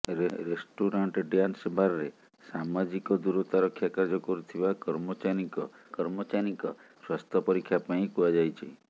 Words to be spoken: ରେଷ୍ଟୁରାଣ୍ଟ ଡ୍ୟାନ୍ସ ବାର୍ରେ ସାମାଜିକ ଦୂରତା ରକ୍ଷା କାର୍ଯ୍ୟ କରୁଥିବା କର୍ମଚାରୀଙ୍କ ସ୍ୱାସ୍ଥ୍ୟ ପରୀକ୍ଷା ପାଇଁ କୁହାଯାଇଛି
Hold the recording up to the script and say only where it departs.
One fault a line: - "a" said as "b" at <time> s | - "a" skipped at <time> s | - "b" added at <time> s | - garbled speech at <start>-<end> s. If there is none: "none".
- "କର୍ମଚାରୀଙ୍କ" added at 5.9 s